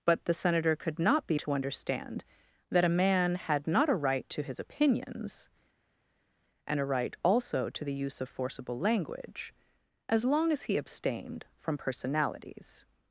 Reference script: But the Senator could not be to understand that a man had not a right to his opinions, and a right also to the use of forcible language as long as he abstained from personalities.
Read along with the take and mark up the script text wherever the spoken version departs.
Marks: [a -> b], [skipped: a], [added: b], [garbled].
But the Senator could not be to understand that a man had not a right to his opinions, and a right also to the use of forcible language as long as he abstained from personalities.